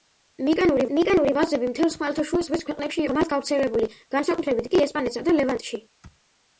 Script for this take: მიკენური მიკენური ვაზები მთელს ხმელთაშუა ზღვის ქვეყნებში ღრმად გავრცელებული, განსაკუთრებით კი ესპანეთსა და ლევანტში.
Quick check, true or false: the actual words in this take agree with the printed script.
true